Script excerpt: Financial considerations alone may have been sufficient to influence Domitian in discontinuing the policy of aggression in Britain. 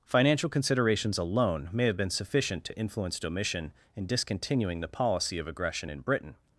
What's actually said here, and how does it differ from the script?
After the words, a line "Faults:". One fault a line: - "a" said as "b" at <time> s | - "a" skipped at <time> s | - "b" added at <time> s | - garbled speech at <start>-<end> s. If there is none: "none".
Financial considerations alone may have been sufficient to influence Domitian in discontinuing the policy of aggression in Britain.
Faults:
none